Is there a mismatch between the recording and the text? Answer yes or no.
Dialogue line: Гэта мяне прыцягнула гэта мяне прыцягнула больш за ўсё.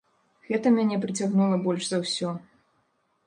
yes